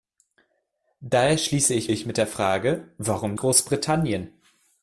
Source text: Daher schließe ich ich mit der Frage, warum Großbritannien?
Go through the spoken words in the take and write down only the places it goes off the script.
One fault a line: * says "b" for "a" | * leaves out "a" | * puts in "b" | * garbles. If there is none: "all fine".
all fine